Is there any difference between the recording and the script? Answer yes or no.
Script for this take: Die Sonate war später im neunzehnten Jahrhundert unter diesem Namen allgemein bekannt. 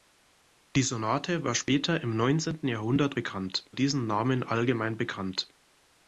yes